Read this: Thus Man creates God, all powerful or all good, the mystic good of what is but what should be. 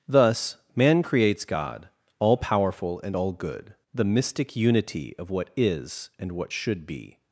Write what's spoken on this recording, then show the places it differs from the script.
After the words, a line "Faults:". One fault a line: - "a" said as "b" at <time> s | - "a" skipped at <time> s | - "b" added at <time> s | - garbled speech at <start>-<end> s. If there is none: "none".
Thus Man creates God, all powerful and all good, the mystic unity of what is and what should be.
Faults:
- "or" said as "and" at 3.0 s
- "good" said as "unity" at 4.5 s
- "but" said as "and" at 6.2 s